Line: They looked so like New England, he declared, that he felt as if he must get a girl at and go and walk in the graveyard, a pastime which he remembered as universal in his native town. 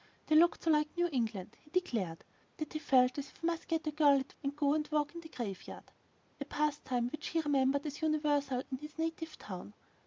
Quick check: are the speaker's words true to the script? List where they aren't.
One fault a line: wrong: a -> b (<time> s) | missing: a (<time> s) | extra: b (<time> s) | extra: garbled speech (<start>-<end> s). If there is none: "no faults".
no faults